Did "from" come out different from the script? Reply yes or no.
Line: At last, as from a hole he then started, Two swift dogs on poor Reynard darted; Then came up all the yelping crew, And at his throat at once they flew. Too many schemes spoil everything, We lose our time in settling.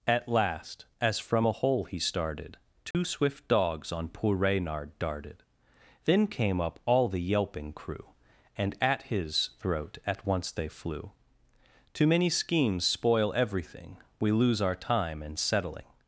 no